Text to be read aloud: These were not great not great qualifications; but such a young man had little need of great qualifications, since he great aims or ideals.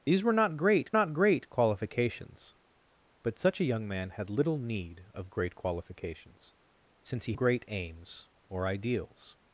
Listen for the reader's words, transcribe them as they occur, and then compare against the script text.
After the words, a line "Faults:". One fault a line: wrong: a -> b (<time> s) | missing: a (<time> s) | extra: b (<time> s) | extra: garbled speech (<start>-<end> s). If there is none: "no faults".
These were not great not great qualifications; but such a young man had little need of great qualifications, since he great aims or ideals.
Faults:
no faults